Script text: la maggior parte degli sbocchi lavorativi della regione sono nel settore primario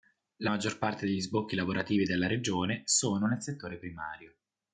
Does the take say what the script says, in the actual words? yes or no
yes